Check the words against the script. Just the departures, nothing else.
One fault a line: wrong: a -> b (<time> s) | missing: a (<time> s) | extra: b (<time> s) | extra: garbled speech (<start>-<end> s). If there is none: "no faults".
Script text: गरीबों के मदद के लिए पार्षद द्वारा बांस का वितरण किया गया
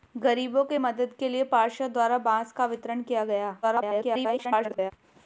extra: garbled speech (3.6-4.9 s)